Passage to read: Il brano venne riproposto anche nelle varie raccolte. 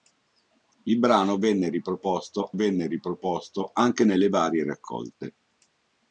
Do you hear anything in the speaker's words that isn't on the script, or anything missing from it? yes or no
yes